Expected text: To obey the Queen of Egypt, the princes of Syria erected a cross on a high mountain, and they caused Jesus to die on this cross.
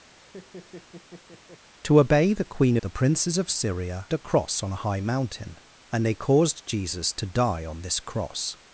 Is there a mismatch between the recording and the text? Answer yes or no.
yes